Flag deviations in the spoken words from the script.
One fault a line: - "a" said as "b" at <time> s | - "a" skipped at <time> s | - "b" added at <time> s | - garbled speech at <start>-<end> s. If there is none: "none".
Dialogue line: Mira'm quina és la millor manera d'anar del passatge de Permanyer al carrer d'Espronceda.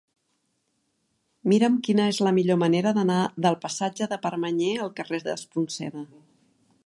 none